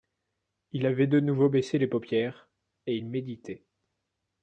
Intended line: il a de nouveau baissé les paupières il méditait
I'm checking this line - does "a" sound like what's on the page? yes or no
no